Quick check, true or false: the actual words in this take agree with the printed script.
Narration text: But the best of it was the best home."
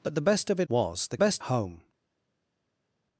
true